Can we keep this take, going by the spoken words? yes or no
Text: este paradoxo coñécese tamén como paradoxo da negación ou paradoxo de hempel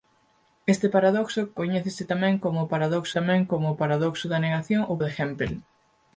no